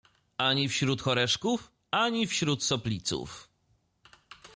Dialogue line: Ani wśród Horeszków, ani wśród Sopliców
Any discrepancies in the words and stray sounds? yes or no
no